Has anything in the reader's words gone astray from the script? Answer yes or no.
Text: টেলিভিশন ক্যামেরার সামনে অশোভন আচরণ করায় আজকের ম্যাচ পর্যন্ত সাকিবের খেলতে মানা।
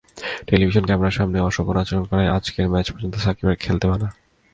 no